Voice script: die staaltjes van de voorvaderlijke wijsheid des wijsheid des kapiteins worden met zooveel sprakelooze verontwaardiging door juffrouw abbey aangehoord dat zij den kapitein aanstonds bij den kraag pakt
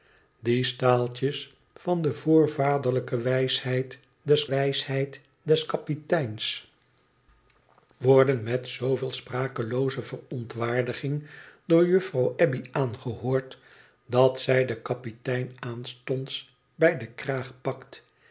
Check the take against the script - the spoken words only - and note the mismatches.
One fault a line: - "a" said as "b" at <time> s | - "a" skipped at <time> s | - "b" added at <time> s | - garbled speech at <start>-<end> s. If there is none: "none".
none